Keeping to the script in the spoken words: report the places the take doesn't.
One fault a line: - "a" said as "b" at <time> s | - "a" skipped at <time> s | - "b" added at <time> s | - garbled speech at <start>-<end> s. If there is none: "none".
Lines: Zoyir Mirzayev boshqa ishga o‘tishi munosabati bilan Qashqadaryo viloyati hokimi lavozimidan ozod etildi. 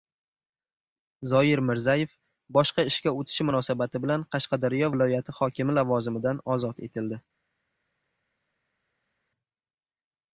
none